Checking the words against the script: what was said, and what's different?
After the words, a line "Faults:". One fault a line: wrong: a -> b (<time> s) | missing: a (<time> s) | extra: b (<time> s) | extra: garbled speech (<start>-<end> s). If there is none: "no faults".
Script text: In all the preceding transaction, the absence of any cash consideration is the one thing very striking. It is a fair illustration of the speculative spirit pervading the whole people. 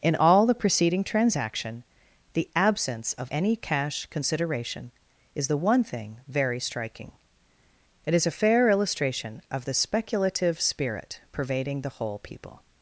In all the preceding transaction, the absence of any cash consideration is the one thing very striking. It is a fair illustration of the speculative spirit pervading the whole people.
Faults:
no faults